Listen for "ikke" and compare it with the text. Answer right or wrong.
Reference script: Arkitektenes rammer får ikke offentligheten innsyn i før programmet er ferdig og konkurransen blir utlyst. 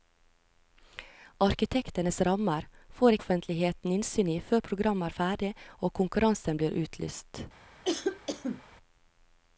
wrong